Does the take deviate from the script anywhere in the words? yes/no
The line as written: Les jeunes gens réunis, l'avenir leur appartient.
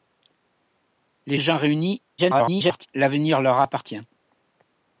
yes